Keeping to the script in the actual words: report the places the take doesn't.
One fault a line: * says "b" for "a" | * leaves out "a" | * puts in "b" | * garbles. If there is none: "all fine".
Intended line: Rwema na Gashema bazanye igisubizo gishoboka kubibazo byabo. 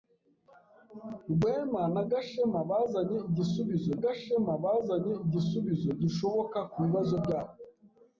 * puts in "Gashema bazanye igisubizo"